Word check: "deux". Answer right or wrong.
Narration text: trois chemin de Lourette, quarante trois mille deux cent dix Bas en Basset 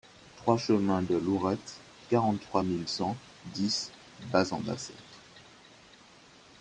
wrong